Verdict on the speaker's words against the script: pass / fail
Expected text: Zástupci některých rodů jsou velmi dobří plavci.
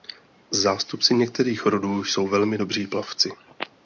pass